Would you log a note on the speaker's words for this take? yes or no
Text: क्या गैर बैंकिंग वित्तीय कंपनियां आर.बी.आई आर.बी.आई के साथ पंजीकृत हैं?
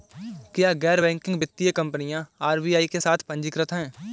yes